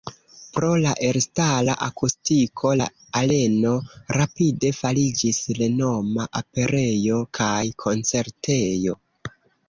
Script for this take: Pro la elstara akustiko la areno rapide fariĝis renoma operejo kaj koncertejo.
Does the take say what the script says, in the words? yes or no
yes